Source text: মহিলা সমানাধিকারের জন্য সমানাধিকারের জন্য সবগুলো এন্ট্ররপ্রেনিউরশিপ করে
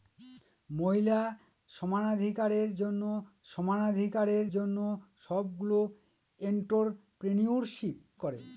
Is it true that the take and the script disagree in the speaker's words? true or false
false